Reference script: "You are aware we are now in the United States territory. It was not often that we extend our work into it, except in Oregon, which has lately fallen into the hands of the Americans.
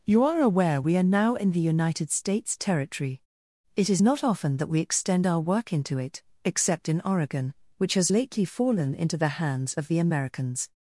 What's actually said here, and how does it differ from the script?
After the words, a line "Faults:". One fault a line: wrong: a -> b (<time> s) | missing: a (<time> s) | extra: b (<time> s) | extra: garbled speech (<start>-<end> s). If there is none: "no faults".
"You are aware we are now in the United States territory. It is not often that we extend our work into it, except in Oregon, which has lately fallen into the hands of the Americans.
Faults:
wrong: was -> is (3.9 s)